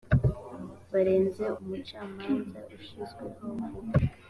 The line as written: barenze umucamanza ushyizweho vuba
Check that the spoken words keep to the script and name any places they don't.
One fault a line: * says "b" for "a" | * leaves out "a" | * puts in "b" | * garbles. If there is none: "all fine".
all fine